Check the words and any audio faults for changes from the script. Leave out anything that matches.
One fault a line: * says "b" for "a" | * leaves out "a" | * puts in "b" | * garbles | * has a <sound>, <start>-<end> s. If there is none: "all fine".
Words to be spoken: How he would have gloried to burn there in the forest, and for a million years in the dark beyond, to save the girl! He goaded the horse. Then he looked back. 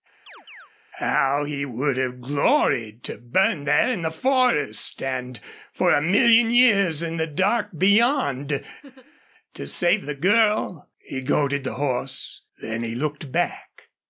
* has a chirp, 0.3-0.7 s
* has a laugh, 8.8-9.2 s